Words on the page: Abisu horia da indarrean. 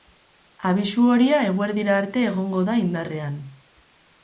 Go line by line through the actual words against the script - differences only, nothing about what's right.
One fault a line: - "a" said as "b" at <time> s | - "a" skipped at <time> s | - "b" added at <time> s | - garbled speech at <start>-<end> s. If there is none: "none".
- "eguerdira arte egongo" added at 1.5 s